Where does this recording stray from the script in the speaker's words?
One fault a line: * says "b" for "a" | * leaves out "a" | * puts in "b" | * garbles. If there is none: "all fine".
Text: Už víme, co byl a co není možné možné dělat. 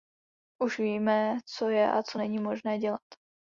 * says "je" for "byl"
* leaves out "možné"